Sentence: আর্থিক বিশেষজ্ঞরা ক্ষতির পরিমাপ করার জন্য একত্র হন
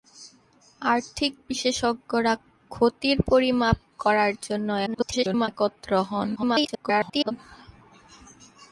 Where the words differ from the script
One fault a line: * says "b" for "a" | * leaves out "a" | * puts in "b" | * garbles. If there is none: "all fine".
* garbles
* garbles